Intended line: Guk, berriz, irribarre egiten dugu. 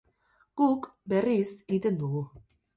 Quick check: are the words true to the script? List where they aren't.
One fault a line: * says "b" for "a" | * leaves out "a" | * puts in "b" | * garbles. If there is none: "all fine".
* leaves out "irribarre"